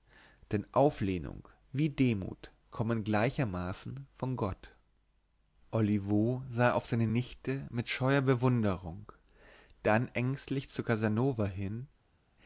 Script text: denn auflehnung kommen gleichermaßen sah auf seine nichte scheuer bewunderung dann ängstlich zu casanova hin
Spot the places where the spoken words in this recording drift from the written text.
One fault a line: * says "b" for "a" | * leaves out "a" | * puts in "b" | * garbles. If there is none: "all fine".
* puts in "wie demut"
* puts in "von gott olivo"
* puts in "mit"